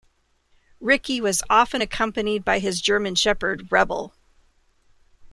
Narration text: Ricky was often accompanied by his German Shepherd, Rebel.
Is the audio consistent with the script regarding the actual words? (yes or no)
yes